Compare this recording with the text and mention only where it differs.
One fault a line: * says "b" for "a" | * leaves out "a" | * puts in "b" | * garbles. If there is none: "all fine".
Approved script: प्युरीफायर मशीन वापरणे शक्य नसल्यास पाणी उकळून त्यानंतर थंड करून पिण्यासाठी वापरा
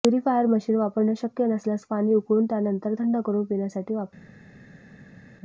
all fine